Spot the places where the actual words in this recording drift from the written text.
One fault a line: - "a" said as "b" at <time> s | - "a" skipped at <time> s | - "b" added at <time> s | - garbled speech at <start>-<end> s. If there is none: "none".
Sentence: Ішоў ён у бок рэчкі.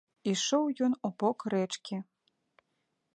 none